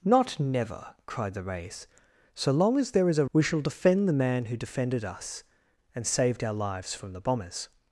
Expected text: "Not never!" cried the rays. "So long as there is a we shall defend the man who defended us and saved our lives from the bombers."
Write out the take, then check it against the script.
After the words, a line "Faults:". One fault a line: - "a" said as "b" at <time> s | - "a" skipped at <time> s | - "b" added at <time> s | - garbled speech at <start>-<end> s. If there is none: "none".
"Not never!" cried the rays. "So long as there is a we shall defend the man who defended us and saved our lives from the bombers."
Faults:
none